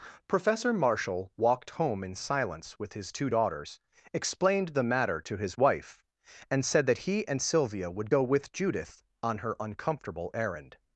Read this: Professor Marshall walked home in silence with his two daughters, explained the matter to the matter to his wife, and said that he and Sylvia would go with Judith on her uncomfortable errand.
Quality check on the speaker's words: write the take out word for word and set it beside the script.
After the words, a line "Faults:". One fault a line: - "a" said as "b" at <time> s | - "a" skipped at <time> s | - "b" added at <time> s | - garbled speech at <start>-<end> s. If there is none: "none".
Professor Marshall walked home in silence with his two daughters, explained the matter to his wife, and said that he and Sylvia would go with Judith on her uncomfortable errand.
Faults:
- "the matter to" skipped at 5.4 s